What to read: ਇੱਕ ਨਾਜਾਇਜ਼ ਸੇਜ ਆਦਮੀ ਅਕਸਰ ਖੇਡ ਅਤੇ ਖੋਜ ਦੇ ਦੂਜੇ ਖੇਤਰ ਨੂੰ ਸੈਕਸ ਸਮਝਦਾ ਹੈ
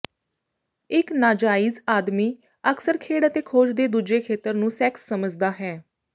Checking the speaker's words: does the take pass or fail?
fail